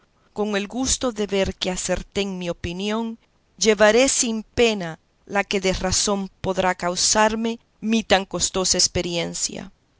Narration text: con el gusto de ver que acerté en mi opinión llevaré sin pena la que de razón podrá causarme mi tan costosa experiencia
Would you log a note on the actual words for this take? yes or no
no